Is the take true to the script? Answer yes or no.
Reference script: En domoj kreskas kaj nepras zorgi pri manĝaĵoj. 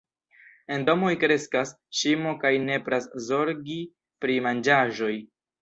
no